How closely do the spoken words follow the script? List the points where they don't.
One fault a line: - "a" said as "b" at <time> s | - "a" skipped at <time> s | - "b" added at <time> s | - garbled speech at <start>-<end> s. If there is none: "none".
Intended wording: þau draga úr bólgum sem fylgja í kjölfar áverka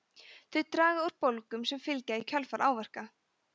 none